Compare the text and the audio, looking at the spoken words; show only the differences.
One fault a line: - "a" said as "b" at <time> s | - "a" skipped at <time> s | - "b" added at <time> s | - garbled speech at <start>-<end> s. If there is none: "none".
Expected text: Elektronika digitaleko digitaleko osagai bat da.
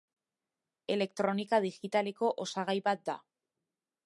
- "digitaleko" skipped at 2.3 s